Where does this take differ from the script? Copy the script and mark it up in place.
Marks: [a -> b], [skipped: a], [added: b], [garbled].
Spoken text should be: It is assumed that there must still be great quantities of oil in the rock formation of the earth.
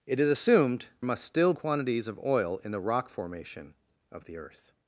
It is assumed [skipped: that there] must still [skipped: be great] quantities of oil in the rock formation of the earth.